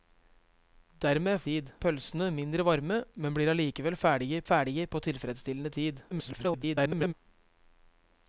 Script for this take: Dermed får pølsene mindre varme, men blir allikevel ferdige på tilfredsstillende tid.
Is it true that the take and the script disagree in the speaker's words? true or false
true